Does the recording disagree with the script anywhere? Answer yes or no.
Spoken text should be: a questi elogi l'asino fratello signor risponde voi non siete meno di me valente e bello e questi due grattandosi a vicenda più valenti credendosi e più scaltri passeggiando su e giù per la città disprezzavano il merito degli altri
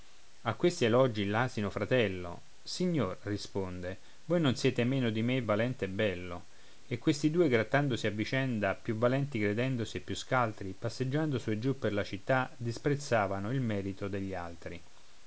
no